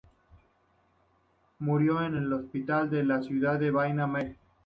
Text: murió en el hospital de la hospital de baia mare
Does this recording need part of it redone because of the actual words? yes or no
yes